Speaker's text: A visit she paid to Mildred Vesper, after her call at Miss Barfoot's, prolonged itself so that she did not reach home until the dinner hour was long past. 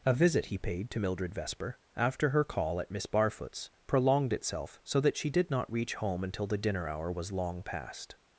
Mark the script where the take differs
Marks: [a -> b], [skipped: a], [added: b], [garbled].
A visit [she -> he] paid to Mildred Vesper, after her call at Miss Barfoot's, prolonged itself so that she did not reach home until the dinner hour was long past.